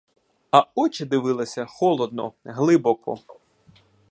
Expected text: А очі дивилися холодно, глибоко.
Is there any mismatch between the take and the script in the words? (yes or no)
no